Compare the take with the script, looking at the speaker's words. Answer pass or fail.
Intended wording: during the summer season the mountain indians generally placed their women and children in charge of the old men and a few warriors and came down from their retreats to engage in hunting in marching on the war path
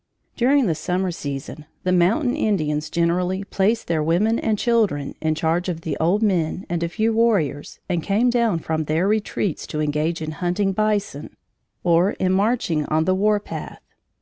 fail